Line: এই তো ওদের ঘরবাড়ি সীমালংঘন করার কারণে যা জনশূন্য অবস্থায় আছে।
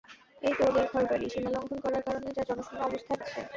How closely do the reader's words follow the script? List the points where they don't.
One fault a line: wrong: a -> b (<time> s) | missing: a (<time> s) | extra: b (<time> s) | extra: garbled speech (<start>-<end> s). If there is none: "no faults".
no faults